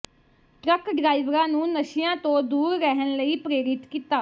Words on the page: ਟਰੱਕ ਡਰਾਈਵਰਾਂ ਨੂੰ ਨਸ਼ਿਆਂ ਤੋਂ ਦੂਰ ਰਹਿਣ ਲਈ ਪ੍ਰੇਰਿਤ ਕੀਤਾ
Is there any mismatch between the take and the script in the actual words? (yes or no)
no